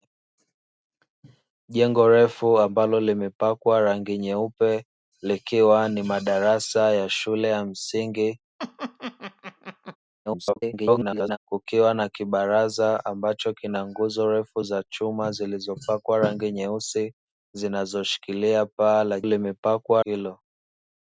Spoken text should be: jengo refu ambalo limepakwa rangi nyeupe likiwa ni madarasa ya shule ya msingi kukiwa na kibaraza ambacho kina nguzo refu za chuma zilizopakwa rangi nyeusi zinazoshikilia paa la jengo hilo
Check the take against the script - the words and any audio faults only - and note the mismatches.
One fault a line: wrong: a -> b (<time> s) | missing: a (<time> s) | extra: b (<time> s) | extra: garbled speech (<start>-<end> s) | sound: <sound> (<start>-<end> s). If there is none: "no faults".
sound: laugh (8.6-10.0 s)
extra: garbled speech (10.3-11.4 s)
wrong: jengo -> limepakwa (19.2 s)